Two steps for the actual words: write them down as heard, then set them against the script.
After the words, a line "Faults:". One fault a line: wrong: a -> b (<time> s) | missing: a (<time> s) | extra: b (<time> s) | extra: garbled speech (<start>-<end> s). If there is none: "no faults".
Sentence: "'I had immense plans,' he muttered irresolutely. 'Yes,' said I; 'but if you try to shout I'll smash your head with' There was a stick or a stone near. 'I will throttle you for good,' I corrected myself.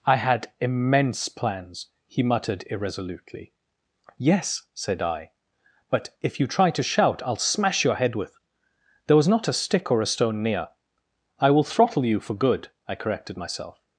"'I had immense plans,' he muttered irresolutely. 'Yes,' said I; 'but if you try to shout I'll smash your head with' There was not a stick or a stone near. 'I will throttle you for good,' I corrected myself.
Faults:
extra: not (9.3 s)